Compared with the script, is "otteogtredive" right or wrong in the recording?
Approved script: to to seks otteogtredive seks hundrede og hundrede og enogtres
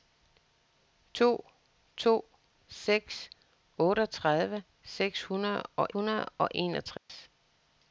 right